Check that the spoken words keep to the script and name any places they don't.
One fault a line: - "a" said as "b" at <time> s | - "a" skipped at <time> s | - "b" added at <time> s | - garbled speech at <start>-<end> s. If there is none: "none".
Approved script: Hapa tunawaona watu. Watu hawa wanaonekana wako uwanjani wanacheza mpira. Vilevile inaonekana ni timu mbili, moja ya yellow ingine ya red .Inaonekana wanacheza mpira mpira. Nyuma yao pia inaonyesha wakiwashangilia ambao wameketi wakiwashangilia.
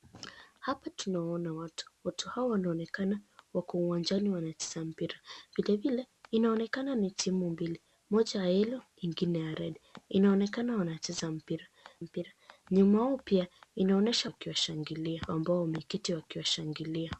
none